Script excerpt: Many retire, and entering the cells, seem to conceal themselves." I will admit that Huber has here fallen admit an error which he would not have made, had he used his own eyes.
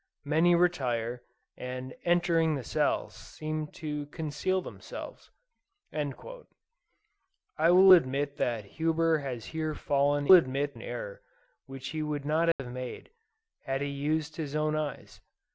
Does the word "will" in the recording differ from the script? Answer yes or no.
no